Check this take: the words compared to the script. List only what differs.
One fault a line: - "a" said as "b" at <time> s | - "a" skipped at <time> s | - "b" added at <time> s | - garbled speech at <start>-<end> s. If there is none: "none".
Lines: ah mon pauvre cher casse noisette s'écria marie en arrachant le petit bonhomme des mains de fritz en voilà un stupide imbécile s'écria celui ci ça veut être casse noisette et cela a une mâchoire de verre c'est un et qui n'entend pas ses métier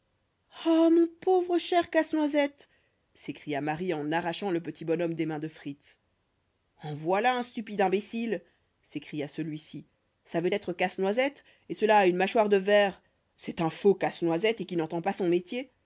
- "faux casse noisette" added at 13.7 s
- "ses" said as "son" at 15.1 s